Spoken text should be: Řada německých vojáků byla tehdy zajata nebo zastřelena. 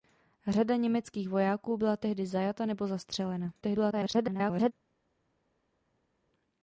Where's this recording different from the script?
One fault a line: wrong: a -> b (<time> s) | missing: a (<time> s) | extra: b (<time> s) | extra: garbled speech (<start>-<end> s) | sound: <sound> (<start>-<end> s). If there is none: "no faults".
extra: garbled speech (3.6-4.7 s)